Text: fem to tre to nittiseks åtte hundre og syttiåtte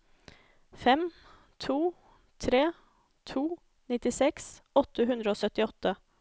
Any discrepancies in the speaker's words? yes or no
no